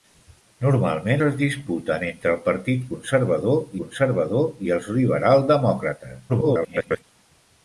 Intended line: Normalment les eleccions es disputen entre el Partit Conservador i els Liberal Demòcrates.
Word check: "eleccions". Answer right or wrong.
wrong